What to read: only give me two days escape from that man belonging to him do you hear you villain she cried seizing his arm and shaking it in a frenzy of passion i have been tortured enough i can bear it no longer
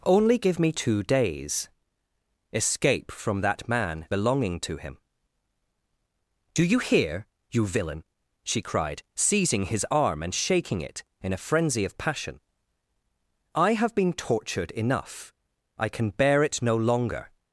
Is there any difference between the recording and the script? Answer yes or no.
no